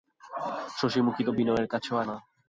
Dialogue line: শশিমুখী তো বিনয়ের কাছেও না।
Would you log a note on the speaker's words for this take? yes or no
no